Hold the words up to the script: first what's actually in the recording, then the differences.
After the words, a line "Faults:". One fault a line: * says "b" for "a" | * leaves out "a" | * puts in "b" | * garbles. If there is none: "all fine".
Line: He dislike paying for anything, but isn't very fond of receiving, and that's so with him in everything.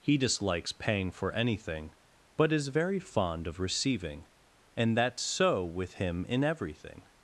He dislikes paying for anything, but is very fond of receiving, and that's so with him in everything.
Faults:
* says "dislikes" for "dislike"
* says "is" for "isn't"